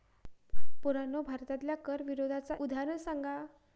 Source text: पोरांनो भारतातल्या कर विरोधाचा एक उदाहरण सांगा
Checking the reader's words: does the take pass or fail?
fail